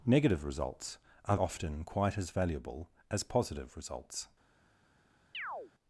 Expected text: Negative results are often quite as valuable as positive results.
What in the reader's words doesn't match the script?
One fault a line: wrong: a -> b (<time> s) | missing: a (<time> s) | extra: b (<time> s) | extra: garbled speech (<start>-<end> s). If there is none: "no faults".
no faults